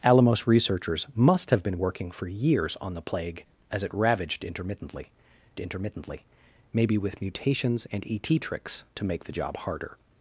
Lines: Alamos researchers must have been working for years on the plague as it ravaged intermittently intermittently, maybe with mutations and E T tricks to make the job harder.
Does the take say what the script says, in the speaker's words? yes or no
yes